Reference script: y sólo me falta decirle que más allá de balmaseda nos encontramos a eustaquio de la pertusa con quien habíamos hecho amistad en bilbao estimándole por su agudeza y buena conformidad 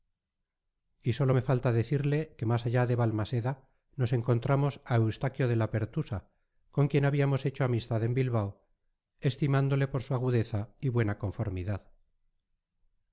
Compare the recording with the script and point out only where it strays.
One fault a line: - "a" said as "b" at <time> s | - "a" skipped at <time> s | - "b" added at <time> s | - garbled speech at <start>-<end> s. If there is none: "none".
none